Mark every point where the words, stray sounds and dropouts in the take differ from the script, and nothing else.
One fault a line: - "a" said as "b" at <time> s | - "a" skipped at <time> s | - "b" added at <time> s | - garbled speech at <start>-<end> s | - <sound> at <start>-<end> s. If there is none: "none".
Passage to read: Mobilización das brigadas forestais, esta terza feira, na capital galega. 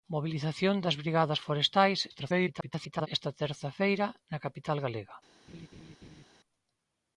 - garbled speech at 2.1-3.1 s
- laugh at 5.5-6.2 s